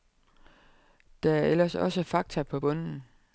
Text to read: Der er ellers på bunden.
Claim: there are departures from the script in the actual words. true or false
true